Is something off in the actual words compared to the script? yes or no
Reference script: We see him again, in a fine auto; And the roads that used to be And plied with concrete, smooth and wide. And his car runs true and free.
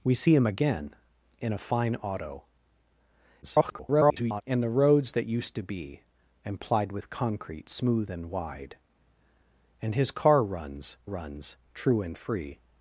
yes